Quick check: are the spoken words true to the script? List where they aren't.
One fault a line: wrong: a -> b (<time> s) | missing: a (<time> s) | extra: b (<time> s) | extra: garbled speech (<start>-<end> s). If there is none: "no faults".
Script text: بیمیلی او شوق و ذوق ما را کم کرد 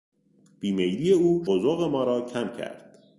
missing: شوق (1.4 s)